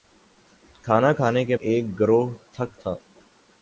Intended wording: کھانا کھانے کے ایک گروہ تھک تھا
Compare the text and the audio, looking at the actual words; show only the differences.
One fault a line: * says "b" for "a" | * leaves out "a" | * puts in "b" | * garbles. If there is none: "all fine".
all fine